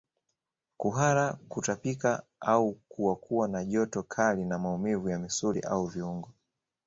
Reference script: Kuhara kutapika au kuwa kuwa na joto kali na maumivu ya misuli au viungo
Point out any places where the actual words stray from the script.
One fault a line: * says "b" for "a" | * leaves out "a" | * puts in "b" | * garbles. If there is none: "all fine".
all fine